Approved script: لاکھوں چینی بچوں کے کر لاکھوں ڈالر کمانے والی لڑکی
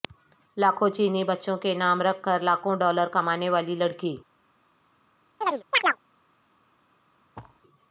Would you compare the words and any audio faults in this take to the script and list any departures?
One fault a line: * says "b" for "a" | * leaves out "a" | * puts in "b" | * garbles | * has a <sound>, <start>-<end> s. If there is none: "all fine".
* puts in "نام رکھ"
* has a chirp, 5.4-6.0 s
* has a thud, 7.4-7.6 s